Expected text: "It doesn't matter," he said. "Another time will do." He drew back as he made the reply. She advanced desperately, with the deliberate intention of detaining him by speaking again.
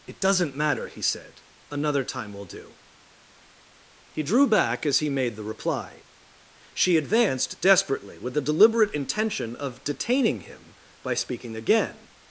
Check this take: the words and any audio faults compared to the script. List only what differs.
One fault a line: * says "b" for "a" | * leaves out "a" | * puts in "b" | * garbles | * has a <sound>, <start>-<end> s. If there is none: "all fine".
all fine